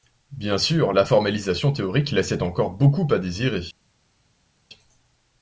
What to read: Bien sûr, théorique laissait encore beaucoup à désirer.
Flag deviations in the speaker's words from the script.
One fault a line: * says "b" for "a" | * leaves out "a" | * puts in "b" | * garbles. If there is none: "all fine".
* puts in "la formalisation"